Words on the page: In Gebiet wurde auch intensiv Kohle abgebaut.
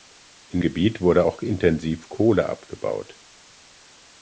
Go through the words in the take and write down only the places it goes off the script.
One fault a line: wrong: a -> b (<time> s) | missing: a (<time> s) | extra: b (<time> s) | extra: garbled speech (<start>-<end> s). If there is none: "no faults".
no faults